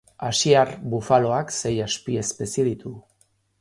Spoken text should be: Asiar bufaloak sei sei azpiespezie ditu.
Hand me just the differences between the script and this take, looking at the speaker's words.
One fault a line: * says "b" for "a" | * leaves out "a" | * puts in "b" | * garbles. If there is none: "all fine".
* leaves out "sei"